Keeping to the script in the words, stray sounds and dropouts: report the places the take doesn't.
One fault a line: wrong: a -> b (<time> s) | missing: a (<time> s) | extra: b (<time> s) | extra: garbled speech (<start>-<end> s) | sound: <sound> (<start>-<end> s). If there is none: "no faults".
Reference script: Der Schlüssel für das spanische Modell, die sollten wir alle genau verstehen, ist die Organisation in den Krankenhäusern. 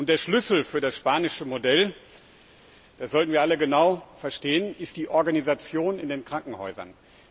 wrong: die -> das (3.0 s)